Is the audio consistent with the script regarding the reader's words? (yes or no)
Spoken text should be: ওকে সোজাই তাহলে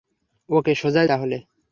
yes